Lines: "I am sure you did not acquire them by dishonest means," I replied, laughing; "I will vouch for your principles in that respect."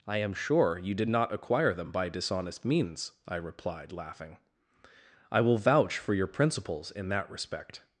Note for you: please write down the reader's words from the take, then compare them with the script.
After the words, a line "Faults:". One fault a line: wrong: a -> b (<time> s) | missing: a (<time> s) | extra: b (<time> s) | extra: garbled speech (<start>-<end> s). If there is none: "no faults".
"I am sure you did not acquire them by dishonest means," I replied, laughing; "I will vouch for your principles in that respect."
Faults:
no faults